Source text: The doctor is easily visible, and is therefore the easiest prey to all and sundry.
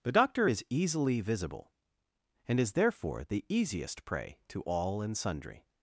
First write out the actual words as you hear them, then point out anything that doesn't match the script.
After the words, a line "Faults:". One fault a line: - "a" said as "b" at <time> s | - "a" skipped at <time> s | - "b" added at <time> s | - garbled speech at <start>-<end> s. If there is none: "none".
The doctor is easily visible, and is therefore the easiest prey to all and sundry.
Faults:
none